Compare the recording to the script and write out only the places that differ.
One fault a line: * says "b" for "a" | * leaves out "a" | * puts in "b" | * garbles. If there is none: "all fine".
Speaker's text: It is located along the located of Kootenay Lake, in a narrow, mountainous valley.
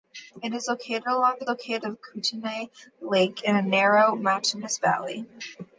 all fine